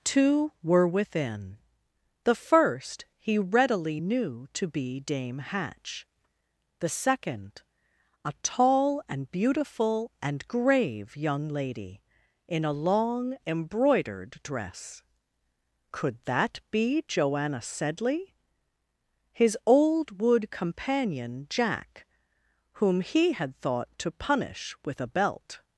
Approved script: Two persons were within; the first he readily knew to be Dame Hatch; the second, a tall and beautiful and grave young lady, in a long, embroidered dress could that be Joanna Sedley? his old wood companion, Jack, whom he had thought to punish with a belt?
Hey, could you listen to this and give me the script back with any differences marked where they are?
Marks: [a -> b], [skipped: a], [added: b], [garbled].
Two [skipped: persons] were within; the first he readily knew to be Dame Hatch; the second, a tall and beautiful and grave young lady, in a long, embroidered dress could that be Joanna Sedley? his old wood companion, Jack, whom he had thought to punish with a belt?